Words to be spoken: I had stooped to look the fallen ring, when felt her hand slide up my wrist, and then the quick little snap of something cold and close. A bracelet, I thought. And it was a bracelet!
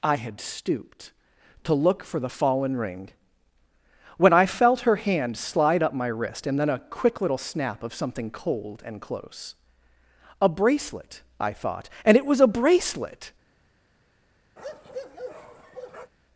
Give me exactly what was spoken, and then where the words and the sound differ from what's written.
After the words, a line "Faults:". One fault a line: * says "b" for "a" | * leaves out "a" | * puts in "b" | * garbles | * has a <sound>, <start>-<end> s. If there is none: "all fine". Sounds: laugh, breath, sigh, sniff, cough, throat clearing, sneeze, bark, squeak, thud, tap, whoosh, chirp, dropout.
I had stooped to look for the fallen ring, when I felt her hand slide up my wrist, and then a quick little snap of something cold and close. A bracelet, I thought. And it was a bracelet!
Faults:
* puts in "for"
* puts in "I"
* says "a" for "the"
* has a bark, 14.6-16.1 s